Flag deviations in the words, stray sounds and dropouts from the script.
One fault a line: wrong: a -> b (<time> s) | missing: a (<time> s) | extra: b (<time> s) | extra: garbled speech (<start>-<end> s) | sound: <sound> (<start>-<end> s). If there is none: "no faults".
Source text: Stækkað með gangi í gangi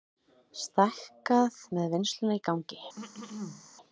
wrong: gangi -> vinnsluna (2.0 s)
sound: throat clearing (3.0-3.7 s)